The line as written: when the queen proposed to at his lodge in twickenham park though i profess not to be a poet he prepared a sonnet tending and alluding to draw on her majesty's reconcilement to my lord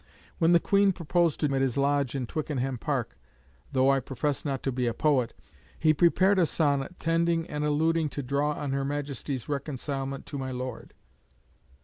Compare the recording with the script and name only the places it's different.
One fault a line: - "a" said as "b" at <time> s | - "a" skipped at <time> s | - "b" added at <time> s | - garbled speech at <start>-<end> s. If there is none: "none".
none